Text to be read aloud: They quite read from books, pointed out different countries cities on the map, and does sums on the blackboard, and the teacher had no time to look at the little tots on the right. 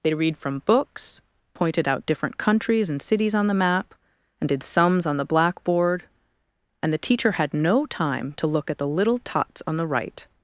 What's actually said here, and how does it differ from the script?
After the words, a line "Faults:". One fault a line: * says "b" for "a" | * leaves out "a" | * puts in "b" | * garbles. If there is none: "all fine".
They read from books, pointed out different countries and cities on the map, and did sums on the blackboard, and the teacher had no time to look at the little tots on the right.
Faults:
* leaves out "quite"
* puts in "and"
* says "did" for "does"